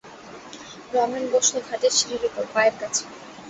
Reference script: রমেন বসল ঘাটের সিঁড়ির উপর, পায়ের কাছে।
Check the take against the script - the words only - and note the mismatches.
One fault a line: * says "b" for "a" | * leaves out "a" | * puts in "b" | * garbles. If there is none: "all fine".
all fine